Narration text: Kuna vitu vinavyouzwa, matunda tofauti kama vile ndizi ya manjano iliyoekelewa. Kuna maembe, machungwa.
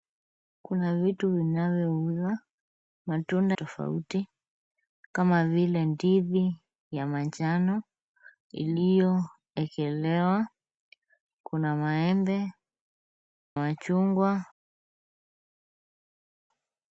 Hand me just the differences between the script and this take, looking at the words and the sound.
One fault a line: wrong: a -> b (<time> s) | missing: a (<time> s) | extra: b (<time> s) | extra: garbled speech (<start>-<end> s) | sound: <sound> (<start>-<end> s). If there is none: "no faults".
no faults